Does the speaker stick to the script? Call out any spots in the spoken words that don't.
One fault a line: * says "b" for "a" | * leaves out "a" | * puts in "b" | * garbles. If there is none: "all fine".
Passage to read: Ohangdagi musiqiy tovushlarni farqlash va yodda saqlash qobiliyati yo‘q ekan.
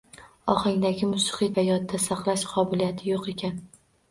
* leaves out "tovushlarni farqlash"